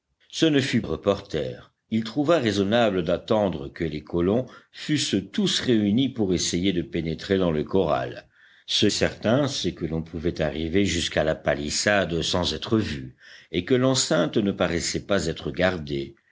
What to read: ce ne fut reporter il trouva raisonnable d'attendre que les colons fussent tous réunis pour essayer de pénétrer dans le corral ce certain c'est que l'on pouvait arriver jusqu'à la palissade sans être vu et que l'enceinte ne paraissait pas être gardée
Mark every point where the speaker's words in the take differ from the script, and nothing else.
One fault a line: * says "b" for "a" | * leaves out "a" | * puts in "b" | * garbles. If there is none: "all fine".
all fine